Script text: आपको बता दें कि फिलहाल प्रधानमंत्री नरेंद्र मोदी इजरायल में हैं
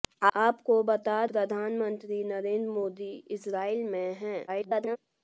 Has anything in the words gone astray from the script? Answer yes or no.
yes